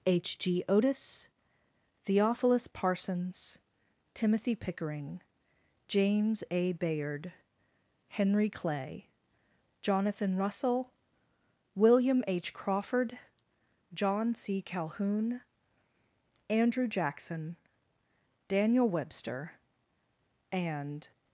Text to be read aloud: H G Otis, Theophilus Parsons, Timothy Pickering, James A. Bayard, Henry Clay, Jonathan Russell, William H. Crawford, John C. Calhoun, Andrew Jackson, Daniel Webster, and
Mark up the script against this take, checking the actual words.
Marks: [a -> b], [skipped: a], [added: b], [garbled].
H G Otis, Theophilus Parsons, Timothy Pickering, James A. Bayard, Henry Clay, Jonathan Russell, William H. Crawford, John C. Calhoun, Andrew Jackson, Daniel Webster, and